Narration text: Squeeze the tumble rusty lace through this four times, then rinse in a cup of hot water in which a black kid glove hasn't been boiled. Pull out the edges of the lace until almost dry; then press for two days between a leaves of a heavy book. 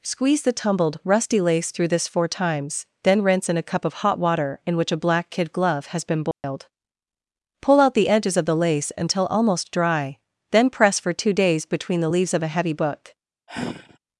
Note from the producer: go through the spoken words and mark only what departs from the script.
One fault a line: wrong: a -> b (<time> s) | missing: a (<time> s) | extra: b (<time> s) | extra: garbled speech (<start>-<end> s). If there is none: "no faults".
wrong: tumble -> tumbled (0.5 s)
wrong: hasn't -> has (5.9 s)
wrong: a -> the (12.0 s)